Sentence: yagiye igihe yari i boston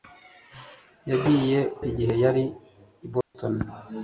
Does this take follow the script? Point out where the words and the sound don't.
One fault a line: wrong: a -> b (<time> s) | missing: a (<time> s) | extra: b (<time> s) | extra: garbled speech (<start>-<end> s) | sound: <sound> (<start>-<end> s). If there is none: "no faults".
sound: dropout (3.2-3.3 s)